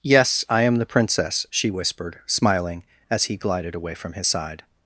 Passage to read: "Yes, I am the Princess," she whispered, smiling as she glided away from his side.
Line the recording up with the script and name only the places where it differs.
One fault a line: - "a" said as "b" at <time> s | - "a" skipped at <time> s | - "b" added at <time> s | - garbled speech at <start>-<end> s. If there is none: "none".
- "she" said as "he" at 3.3 s